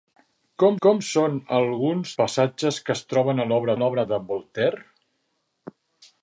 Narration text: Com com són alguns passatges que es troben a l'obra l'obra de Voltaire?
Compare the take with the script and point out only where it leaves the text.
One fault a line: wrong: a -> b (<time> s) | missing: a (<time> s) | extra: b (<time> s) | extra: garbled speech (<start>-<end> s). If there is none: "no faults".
no faults